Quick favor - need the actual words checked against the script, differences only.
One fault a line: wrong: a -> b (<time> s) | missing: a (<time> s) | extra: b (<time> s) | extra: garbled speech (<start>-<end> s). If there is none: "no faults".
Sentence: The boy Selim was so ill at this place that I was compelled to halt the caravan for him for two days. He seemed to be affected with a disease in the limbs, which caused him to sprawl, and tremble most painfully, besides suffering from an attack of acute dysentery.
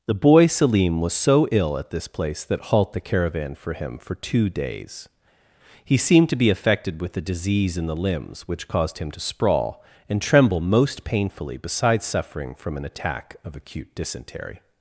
missing: I was compelled to (2.7 s)